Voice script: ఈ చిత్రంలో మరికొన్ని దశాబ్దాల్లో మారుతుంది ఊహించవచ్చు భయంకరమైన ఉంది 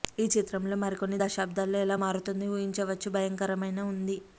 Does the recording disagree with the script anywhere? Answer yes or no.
yes